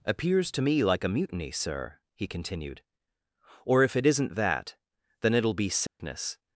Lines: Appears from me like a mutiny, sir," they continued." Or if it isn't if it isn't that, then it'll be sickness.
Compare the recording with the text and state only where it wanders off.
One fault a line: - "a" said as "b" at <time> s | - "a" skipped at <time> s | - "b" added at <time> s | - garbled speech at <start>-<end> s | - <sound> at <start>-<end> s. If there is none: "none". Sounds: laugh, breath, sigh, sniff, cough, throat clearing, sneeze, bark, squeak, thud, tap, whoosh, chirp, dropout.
- "from" said as "to" at 0.5 s
- "they" said as "he" at 2.1 s
- "if it isn't" skipped at 4.3 s
- dropout at 5.9-6.0 s